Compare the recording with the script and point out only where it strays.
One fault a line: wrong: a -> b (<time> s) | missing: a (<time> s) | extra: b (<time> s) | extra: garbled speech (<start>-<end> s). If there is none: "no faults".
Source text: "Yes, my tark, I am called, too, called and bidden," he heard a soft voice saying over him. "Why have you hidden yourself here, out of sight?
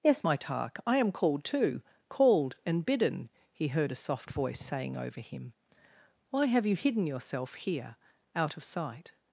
no faults